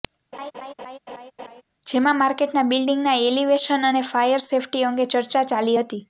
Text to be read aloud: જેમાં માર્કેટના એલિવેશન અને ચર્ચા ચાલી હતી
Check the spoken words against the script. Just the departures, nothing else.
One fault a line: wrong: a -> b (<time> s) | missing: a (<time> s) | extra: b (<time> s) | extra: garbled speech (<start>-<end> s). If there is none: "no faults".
extra: બિલ્ડિંગના (2.7 s)
extra: ફાયર સેફ્ટી અંગે (4.1 s)